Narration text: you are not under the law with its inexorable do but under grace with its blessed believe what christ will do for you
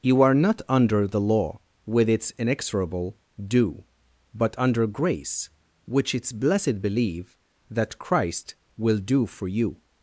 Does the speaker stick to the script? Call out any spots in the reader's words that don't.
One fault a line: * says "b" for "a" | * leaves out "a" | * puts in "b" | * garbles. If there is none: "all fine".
* says "which" for "with"
* says "that" for "what"